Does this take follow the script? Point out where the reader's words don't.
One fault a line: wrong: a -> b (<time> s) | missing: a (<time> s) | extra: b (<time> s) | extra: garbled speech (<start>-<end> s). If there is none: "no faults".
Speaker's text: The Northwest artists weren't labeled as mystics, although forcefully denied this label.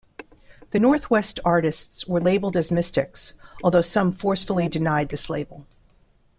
wrong: weren't -> were (2.1 s)
extra: some (3.8 s)